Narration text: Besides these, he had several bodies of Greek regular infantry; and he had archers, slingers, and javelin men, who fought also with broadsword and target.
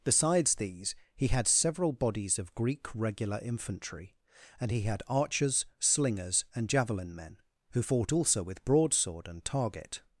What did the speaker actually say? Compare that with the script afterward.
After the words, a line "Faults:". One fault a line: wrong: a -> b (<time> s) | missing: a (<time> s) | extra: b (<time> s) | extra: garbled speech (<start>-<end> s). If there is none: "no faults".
Besides these, he had several bodies of Greek regular infantry; and he had archers, slingers, and javelin men, who fought also with broadsword and target.
Faults:
no faults